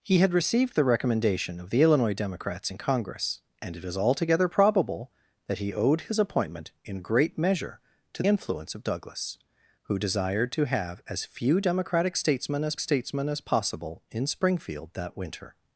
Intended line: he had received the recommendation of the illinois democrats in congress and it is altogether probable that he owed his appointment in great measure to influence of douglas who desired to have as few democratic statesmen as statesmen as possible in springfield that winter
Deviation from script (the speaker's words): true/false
false